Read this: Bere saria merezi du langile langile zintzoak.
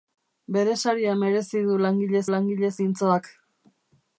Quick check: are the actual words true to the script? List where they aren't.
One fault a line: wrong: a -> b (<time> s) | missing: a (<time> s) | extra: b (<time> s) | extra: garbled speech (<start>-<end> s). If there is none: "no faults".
no faults